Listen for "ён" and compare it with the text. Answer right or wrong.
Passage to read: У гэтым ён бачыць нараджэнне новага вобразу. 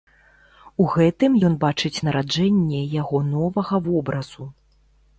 right